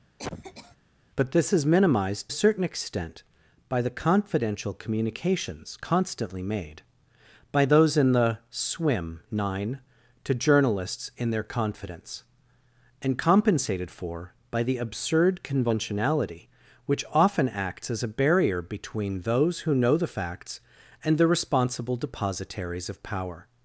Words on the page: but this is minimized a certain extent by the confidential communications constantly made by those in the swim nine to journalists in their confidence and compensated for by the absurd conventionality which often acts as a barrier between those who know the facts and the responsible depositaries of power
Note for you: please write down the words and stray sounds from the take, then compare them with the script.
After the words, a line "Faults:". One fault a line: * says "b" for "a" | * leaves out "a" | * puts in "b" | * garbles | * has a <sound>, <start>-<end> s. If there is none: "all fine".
but this is minimized a certain extent by the confidential communications constantly made by those in the swim nine to journalists in their confidence and compensated for by the absurd conventionality which often acts as a barrier between those who know the facts and the responsible depositaries of power
Faults:
* has a cough, 0.2-0.8 s